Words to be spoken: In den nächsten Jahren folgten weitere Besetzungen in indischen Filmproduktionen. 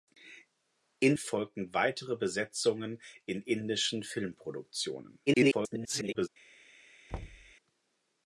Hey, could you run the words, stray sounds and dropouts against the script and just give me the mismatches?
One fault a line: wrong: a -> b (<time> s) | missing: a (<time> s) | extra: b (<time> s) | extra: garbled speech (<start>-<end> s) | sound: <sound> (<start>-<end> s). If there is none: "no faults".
missing: den nächsten Jahren (1.1 s)
extra: garbled speech (5.3-6.3 s)
sound: thud (7.1-7.5 s)